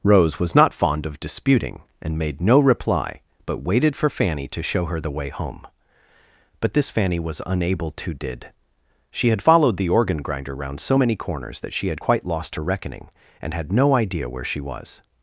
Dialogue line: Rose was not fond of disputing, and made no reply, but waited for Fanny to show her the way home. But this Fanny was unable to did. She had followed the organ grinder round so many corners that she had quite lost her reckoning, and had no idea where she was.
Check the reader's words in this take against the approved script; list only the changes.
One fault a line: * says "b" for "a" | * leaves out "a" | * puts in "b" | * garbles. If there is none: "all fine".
all fine